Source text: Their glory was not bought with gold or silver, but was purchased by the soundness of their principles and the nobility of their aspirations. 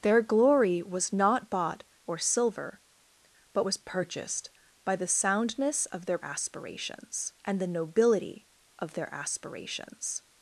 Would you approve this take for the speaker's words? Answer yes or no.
no